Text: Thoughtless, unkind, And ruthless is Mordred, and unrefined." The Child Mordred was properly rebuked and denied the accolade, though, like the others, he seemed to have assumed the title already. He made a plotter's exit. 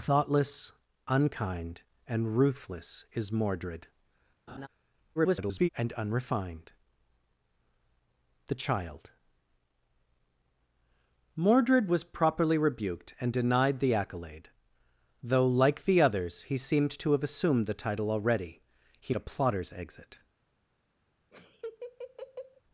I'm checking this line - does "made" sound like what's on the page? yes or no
no